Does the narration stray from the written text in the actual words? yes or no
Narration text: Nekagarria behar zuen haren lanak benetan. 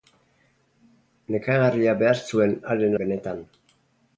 yes